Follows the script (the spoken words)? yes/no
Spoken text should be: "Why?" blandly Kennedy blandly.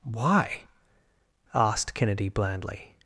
no